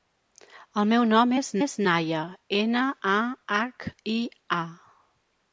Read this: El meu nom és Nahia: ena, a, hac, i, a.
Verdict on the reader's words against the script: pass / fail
fail